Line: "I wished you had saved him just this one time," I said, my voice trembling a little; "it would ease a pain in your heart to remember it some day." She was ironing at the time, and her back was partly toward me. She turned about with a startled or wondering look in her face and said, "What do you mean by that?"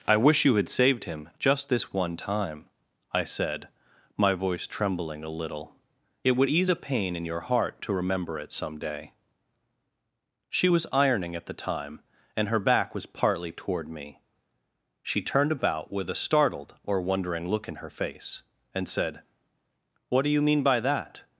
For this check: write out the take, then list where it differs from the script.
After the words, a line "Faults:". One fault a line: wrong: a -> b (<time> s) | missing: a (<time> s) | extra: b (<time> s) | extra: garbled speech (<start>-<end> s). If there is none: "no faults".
"I wish you had saved him just this one time," I said, my voice trembling a little; "it would ease a pain in your heart to remember it some day." She was ironing at the time, and her back was partly toward me. She turned about with a startled or wondering look in her face and said, "What do you mean by that?"
Faults:
wrong: wished -> wish (0.2 s)